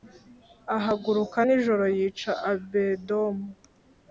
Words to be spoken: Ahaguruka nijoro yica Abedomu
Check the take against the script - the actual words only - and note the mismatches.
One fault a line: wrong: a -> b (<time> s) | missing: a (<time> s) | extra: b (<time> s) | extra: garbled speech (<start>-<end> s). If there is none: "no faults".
no faults